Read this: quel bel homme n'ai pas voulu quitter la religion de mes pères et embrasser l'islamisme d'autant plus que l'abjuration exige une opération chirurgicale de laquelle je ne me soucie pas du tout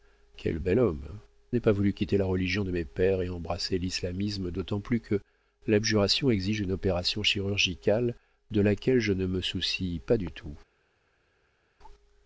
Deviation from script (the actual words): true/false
false